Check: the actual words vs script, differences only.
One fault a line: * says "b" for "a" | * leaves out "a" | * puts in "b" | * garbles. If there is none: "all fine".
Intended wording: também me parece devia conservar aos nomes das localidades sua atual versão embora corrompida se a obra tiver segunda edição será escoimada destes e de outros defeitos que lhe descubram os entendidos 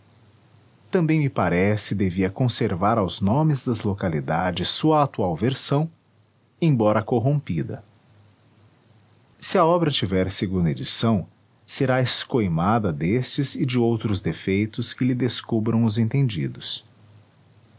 all fine